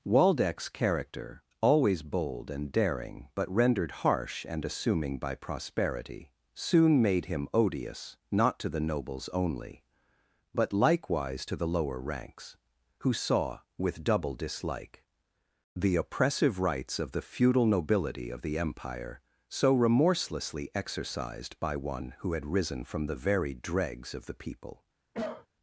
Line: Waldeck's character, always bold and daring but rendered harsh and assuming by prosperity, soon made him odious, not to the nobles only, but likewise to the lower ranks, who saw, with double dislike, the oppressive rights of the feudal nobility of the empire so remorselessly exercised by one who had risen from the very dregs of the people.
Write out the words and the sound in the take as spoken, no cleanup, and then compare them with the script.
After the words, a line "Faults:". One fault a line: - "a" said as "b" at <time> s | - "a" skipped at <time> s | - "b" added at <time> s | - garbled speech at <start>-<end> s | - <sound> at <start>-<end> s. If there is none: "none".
Waldeck's character, always bold and daring but rendered harsh and assuming by prosperity, soon made him odious, not to the nobles only, but likewise to the lower ranks, who saw, with double dislike, the oppressive rights of the feudal nobility of the empire so remorselessly exercised by one who had risen from the very dregs of the people.
Faults:
- cough at 25.1-25.5 s